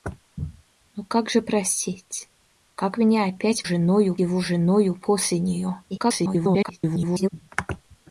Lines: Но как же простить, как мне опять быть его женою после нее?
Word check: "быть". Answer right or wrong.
wrong